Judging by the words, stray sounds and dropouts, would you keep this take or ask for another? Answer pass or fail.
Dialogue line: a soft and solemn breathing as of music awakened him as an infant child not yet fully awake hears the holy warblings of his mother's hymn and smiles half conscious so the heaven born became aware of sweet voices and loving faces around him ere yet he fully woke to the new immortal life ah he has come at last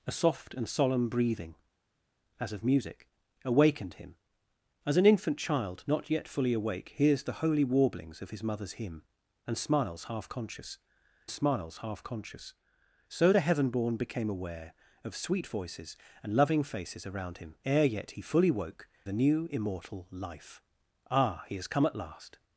fail